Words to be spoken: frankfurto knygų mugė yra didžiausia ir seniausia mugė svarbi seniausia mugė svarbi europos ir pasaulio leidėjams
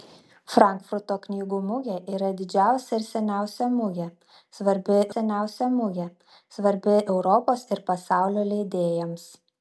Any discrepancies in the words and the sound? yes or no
no